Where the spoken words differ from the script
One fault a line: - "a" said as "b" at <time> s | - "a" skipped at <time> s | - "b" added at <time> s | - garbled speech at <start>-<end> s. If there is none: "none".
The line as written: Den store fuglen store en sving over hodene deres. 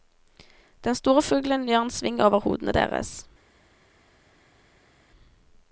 - "store" said as "gjør" at 1.7 s